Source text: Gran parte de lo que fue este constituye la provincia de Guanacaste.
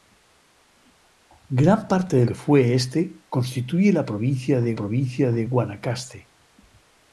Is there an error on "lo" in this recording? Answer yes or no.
yes